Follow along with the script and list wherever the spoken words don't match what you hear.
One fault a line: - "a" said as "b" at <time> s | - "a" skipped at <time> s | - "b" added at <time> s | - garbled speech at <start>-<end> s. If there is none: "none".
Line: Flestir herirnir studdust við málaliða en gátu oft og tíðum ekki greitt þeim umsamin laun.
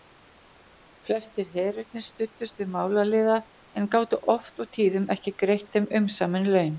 none